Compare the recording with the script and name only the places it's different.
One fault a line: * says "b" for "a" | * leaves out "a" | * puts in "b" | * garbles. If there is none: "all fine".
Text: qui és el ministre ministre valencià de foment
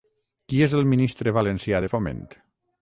* leaves out "ministre"